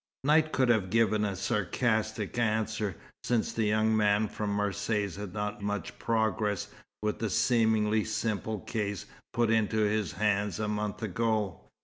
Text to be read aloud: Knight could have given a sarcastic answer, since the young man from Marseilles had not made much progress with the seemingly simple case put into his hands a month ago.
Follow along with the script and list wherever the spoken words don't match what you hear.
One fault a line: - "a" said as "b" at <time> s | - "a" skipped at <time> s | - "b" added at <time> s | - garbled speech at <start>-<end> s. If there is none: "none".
- "made" skipped at 5.6 s